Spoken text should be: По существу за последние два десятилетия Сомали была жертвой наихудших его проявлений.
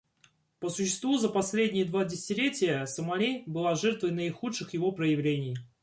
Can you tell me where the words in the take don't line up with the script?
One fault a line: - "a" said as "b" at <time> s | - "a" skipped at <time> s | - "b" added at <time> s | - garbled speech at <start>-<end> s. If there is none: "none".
none